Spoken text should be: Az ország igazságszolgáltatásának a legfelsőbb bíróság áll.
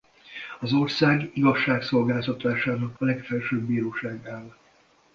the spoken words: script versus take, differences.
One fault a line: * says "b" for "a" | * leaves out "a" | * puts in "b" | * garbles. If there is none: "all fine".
all fine